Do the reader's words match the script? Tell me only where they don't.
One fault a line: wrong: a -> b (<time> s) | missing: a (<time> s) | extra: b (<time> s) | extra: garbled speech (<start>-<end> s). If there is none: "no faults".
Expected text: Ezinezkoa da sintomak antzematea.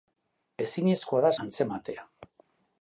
missing: sintomak (1.3 s)